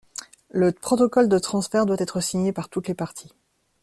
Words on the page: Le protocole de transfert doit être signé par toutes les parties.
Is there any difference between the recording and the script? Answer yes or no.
no